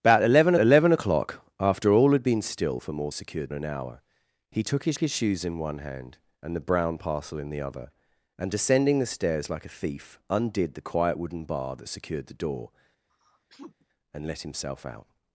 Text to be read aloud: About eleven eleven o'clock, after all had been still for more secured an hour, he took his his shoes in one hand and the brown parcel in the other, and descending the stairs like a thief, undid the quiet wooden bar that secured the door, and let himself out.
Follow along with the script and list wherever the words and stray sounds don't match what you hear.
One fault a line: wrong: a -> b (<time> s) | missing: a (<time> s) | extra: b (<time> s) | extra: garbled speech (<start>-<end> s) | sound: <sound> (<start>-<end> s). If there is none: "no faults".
sound: sneeze (13.1-13.9 s)